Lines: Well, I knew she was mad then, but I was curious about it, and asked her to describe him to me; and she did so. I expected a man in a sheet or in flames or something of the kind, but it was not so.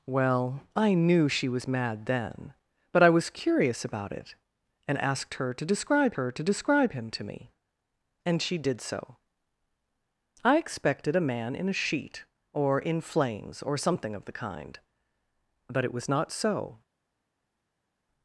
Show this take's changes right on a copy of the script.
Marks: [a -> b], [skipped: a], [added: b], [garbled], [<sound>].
Well, I knew she was mad then, but I was curious about it, and asked her to describe [added: her to describe] him to me; and she did so. I expected a man in a sheet or in flames or something of the kind, but it was not so.